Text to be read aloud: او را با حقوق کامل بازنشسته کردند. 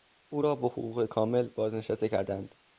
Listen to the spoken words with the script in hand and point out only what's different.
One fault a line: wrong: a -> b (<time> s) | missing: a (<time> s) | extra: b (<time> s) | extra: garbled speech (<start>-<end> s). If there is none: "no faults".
no faults